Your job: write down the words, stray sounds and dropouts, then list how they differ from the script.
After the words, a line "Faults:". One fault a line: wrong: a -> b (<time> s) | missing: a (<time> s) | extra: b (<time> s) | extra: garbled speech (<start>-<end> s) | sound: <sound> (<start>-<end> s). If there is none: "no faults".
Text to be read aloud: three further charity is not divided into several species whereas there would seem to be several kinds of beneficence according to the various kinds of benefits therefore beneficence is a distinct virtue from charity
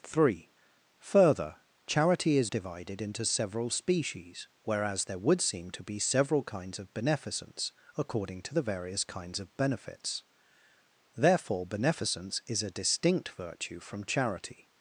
three further charity is divided into several species whereas there would seem to be several kinds of beneficence according to the various kinds of benefits therefore beneficence is a distinct virtue from charity
Faults:
missing: not (2.5 s)